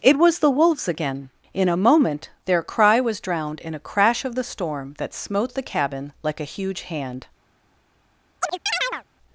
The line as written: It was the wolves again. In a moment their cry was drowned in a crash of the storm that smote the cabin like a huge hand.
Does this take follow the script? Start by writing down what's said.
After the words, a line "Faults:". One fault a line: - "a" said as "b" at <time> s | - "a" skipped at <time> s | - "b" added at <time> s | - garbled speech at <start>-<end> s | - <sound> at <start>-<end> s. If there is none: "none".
It was the wolves again. In a moment their cry was drowned in a crash of the storm that smote the cabin like a huge hand.
Faults:
- chirp at 8.4-9.0 s